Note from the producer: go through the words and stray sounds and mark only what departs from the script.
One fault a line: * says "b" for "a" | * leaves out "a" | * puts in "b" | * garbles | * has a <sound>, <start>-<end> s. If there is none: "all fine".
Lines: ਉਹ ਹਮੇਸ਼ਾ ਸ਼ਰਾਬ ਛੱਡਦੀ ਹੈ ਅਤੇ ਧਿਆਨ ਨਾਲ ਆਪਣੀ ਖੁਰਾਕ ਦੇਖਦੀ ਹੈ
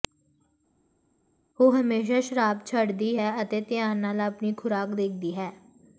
all fine